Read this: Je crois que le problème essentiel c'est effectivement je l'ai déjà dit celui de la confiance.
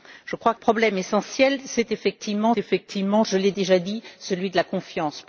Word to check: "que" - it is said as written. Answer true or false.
false